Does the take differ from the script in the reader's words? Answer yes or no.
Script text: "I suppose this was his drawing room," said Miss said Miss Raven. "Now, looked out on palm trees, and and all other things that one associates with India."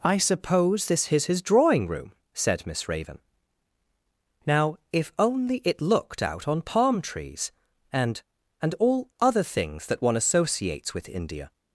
yes